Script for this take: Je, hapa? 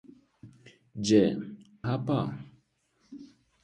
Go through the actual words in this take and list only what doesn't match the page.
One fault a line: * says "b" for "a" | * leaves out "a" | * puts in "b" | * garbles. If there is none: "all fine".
all fine